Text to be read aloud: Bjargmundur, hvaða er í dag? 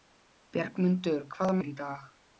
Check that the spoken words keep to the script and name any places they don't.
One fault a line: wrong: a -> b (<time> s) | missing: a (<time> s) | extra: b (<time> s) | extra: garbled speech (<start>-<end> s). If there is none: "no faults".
no faults